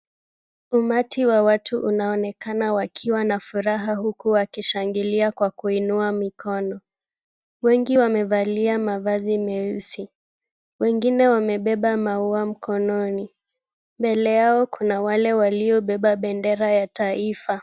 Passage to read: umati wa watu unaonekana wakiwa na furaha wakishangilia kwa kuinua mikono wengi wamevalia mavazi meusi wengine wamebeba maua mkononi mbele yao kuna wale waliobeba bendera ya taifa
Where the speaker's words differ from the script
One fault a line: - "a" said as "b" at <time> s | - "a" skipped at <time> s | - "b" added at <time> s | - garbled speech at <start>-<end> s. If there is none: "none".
- "huku" added at 4.0 s